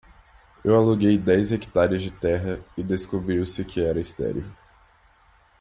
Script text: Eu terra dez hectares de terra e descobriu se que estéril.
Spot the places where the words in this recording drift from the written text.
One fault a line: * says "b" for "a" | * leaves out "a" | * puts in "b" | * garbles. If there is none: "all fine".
* says "aluguei" for "terra"
* puts in "era"